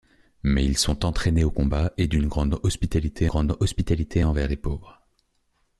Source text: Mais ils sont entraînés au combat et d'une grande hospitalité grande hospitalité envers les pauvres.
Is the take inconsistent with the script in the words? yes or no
no